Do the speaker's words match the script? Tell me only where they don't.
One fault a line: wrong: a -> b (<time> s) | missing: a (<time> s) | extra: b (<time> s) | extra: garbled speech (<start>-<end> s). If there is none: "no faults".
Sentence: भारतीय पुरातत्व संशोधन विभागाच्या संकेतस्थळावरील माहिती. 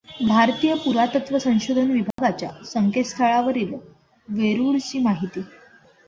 extra: वेरूळची (4.3 s)